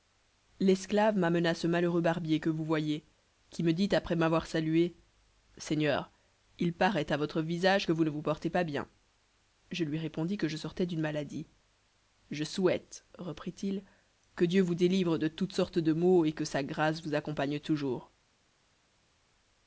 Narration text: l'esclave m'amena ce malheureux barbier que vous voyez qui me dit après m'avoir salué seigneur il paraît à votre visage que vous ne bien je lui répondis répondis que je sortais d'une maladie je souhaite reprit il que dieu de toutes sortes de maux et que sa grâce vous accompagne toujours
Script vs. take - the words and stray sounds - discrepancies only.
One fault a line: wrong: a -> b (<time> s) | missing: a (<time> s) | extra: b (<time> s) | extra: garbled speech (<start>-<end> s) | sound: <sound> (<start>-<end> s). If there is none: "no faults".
extra: vous portez pas (8.1 s)
missing: répondis (10.4 s)
extra: vous délivre (14.6 s)